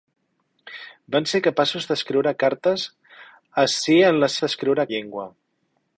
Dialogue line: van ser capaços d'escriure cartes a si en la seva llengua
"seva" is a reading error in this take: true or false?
true